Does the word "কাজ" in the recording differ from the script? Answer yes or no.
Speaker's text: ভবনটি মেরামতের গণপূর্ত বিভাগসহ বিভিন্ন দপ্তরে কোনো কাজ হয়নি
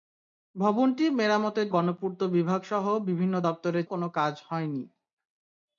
no